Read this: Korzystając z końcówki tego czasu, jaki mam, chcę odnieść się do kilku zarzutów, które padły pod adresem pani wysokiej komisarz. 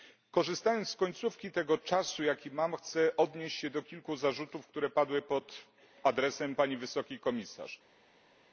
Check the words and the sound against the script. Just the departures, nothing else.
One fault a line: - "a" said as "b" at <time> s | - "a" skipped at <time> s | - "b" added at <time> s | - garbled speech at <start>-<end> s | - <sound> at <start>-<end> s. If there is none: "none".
none